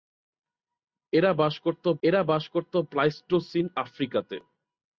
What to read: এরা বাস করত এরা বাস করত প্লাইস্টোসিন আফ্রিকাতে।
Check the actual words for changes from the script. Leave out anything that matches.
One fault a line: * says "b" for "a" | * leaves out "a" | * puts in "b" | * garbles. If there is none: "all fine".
all fine